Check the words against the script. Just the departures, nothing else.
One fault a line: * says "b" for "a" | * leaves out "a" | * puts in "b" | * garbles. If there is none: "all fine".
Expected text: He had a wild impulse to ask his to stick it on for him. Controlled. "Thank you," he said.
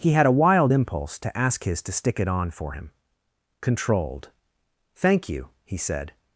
all fine